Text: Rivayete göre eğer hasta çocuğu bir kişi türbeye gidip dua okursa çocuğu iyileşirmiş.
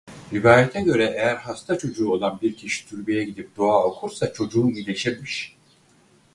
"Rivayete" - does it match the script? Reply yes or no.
yes